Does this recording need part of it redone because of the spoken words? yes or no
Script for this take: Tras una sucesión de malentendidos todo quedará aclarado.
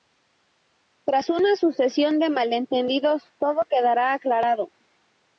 no